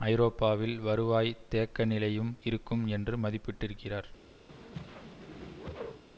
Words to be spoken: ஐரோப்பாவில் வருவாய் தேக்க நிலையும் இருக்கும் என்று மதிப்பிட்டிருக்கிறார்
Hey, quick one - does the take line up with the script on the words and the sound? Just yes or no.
no